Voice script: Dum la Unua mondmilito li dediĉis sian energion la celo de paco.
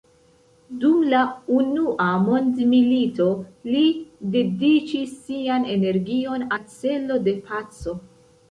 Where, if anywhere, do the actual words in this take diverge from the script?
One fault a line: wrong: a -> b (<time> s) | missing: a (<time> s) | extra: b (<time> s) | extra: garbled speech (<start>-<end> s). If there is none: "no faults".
no faults